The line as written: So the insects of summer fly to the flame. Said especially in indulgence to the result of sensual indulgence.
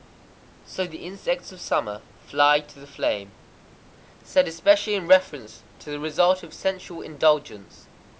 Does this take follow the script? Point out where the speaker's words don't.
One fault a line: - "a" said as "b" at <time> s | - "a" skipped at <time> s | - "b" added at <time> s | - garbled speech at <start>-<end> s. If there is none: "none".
- "indulgence" said as "reference" at 5.1 s